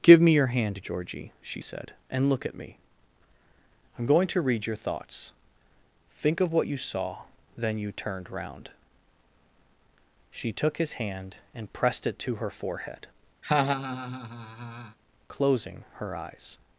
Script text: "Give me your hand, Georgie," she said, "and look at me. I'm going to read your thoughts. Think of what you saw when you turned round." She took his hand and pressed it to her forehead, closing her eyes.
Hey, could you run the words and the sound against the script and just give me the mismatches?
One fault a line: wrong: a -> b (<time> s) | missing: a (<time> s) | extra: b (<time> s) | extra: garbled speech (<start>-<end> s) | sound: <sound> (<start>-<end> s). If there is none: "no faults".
wrong: when -> then (7.6 s)
sound: laugh (13.4-15.0 s)